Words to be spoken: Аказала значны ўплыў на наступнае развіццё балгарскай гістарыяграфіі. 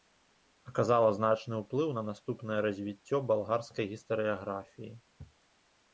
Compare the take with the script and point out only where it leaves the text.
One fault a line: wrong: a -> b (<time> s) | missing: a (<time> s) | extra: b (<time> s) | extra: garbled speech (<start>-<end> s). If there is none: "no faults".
no faults